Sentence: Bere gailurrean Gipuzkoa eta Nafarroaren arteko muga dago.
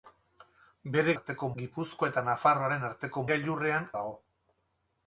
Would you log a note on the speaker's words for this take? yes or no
yes